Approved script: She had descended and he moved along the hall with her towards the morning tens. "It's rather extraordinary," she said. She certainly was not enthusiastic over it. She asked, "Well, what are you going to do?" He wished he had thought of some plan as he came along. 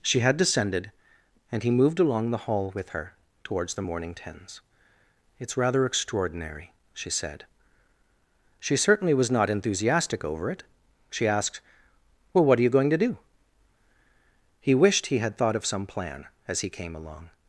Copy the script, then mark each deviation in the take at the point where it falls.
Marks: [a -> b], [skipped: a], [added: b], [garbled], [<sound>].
She had descended and he moved along the hall with her towards the morning tens. "It's rather extraordinary," she said. She certainly was not enthusiastic over it. She asked, "Well, what are you going to do?" He wished he had thought of some plan as he came along.